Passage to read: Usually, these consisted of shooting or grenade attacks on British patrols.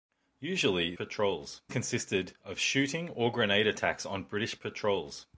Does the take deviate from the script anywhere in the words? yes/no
yes